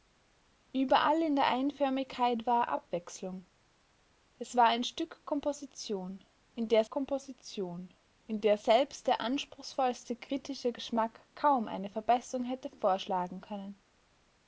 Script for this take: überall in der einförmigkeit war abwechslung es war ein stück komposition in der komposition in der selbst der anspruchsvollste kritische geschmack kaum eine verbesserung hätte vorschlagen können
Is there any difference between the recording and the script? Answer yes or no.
no